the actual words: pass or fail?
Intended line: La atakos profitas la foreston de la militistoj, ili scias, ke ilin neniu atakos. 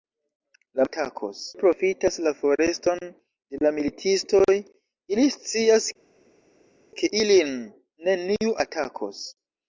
pass